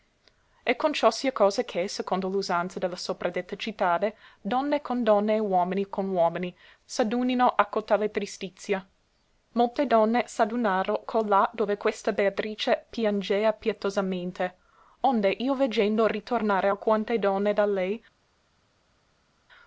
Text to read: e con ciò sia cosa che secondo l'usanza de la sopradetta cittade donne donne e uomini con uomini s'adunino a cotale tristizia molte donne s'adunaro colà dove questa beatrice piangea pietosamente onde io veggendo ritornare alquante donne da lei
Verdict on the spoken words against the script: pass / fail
fail